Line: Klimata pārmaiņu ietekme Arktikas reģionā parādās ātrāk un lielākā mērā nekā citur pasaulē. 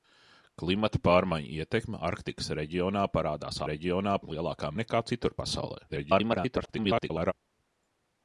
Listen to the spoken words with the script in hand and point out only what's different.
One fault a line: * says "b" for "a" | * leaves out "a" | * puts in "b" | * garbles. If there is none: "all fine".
* says "reģionā" for "ātrāk"
* leaves out "mērā"
* garbles